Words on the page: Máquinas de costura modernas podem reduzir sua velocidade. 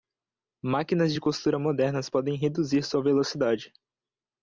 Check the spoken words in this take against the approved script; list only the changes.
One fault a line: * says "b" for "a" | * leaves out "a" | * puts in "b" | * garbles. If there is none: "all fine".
all fine